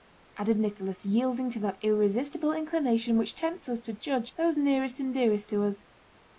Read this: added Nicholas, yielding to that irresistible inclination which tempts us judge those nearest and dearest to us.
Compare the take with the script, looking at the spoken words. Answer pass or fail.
fail